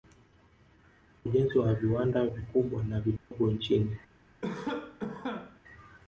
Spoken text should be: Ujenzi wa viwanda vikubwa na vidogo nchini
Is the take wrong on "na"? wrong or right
right